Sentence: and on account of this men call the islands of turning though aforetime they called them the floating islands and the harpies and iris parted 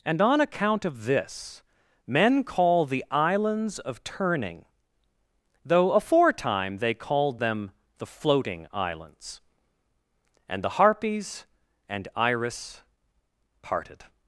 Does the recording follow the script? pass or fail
pass